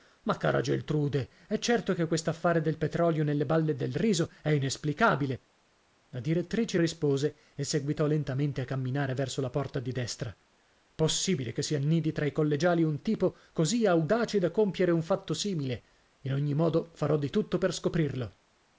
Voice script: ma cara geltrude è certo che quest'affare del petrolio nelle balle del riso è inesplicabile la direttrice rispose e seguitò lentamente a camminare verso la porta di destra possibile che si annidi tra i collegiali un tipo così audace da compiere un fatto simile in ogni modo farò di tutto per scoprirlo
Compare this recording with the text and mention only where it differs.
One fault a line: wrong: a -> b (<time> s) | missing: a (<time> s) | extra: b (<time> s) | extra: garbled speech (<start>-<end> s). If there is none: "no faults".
no faults